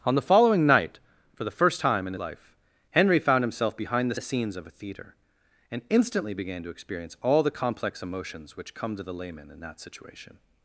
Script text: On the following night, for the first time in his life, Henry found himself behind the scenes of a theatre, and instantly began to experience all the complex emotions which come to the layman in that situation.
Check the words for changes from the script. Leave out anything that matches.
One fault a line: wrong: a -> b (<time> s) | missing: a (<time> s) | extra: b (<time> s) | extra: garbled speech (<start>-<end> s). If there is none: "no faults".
missing: his (2.1 s)
extra: the (4.1 s)